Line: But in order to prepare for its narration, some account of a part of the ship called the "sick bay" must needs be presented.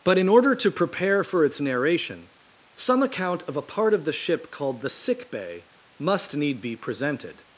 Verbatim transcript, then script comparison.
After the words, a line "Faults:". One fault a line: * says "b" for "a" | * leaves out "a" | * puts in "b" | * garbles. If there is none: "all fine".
But in order to prepare for its narration, some account of a part of the ship called the "sick bay" must need be presented.
Faults:
* says "need" for "needs"